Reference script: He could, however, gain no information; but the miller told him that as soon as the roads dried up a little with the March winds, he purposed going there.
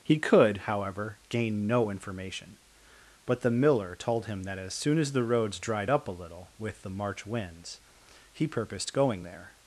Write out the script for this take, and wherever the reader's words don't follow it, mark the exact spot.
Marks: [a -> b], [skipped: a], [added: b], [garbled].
He could, however, gain no information; but the miller told him that as soon as the roads dried up a little with the March winds, he purposed going there.